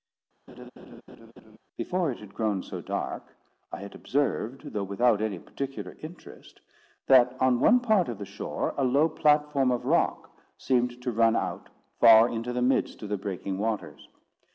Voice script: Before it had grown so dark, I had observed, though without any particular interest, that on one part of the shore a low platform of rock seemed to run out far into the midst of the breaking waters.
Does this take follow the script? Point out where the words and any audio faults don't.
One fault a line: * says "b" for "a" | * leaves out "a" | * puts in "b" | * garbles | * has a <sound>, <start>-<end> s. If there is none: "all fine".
* has a laugh, 0.5-1.6 s